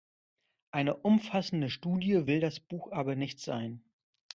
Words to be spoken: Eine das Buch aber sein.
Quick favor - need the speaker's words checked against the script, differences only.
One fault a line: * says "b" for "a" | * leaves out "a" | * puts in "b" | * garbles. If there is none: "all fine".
* puts in "umfassende Studie will"
* puts in "nicht"